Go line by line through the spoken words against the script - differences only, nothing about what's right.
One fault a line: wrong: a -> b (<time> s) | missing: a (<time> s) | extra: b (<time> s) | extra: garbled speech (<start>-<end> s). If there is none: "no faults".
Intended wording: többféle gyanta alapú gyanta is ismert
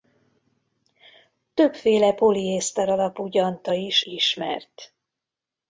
wrong: gyanta -> poliészter (2.1 s)